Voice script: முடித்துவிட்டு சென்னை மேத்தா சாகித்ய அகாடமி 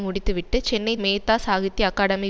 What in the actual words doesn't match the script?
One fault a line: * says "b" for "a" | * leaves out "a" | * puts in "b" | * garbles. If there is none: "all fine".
all fine